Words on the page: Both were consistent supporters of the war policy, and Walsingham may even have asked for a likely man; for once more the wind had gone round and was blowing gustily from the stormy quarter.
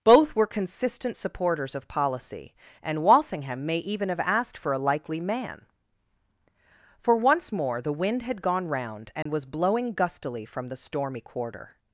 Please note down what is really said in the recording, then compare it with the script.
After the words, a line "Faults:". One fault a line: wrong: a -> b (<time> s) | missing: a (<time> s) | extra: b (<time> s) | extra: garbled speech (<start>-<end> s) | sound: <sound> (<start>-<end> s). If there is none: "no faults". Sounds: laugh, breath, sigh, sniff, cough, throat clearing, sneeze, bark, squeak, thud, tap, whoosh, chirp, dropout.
Both were consistent supporters of policy, and Walsingham may even have asked for a likely man; for once more the wind had gone round and was blowing gustily from the stormy quarter.
Faults:
missing: the war (1.9 s)
sound: dropout (9.2-9.3 s)